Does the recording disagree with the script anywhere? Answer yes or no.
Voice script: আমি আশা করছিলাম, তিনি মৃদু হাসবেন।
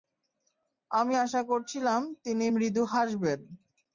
no